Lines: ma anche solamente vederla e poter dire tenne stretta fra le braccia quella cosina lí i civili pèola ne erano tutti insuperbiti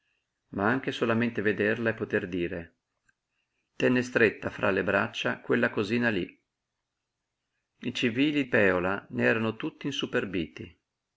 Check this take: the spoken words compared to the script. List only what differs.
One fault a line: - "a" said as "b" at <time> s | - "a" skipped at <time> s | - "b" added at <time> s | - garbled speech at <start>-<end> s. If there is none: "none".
none